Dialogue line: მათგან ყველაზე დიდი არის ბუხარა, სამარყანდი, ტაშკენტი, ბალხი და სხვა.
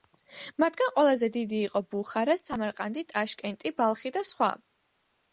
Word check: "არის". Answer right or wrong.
wrong